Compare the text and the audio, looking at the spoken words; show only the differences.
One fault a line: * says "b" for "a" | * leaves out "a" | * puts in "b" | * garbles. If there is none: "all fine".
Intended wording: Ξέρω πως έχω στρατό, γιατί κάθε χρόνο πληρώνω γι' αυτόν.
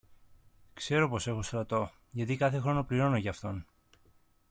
all fine